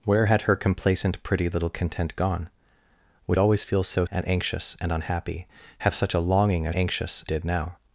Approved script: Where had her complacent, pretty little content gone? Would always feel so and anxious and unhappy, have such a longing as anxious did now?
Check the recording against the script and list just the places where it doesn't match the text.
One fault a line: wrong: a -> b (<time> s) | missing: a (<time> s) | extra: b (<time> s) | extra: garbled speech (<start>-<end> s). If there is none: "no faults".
no faults